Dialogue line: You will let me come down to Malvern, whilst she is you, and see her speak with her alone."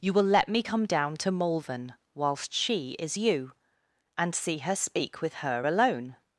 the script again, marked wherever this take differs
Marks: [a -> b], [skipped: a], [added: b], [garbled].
You will let me come down to Malvern, whilst she is you, and see her speak with her alone."